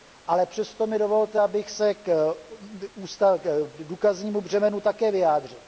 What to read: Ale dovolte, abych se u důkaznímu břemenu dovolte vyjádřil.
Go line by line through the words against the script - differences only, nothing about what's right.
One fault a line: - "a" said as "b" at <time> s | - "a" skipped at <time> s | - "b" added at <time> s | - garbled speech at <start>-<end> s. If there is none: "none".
- "přesto mi" added at 0.5 s
- "u" said as "k" at 1.9 s
- "dovolte" said as "také" at 4.8 s